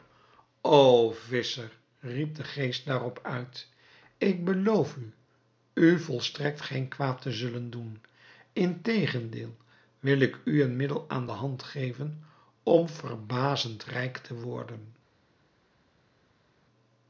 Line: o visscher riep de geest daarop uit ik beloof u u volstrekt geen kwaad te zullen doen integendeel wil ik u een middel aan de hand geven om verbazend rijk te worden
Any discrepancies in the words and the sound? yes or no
no